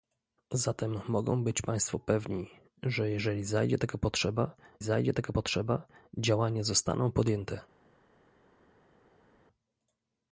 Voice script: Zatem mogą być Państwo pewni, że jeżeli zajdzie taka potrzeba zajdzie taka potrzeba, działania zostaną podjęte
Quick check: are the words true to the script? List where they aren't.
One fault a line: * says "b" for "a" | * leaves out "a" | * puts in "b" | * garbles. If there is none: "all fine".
all fine